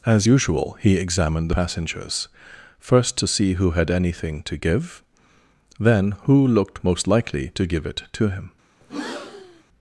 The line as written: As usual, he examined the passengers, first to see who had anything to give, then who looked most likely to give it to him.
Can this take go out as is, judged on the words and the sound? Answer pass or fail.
fail